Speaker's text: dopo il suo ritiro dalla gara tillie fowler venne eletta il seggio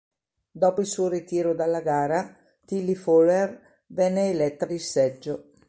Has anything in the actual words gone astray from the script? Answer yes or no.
no